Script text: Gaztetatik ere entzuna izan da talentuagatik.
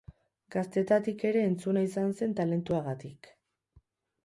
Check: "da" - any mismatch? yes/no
yes